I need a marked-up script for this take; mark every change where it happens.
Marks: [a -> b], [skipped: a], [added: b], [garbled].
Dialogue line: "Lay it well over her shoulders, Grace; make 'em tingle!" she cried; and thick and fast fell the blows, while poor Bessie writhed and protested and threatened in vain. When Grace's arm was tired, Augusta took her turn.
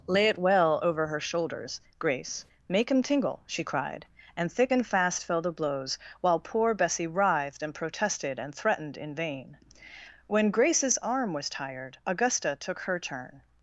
"Lay it well over her shoulders, Grace; make 'em tingle!" she cried; and thick and fast fell the blows, while poor Bessie writhed and protested and threatened in vain. When Grace's arm was tired, Augusta took her turn.